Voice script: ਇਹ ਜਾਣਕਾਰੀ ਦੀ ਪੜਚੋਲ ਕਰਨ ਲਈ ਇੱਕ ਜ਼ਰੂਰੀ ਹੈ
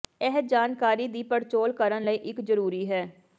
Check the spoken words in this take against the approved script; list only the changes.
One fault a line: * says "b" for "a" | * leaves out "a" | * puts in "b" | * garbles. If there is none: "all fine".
all fine